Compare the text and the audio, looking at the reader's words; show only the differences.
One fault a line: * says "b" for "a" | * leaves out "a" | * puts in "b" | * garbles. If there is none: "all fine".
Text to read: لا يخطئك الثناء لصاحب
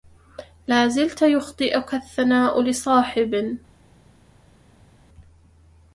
* puts in "زلت"